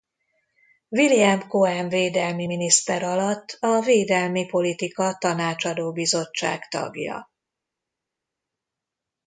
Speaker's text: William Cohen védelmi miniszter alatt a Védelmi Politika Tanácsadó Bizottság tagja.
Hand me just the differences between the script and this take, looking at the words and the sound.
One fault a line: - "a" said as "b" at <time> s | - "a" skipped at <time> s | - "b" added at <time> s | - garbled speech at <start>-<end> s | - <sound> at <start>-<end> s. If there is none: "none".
none